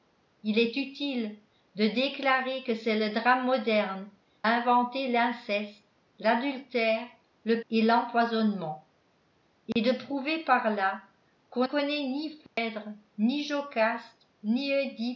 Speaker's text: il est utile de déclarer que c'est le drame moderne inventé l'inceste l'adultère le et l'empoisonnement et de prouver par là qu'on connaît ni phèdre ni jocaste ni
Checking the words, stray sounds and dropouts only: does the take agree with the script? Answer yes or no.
no